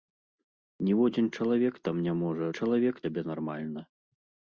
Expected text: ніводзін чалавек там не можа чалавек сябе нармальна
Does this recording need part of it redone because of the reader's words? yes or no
no